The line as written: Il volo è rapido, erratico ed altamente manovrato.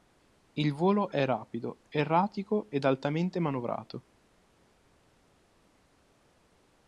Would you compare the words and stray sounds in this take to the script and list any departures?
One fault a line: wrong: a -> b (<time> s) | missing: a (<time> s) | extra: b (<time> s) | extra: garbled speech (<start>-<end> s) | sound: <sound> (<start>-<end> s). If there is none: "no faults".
no faults